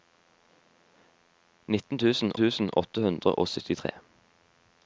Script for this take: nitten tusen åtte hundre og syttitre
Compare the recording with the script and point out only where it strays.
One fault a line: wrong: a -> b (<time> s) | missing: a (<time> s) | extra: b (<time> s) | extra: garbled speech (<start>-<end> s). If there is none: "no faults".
extra: tusen (2.4 s)